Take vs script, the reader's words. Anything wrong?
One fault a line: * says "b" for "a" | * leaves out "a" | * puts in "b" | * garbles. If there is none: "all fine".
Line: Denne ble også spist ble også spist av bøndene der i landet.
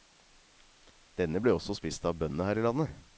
* leaves out "ble også spist"
* says "her" for "der"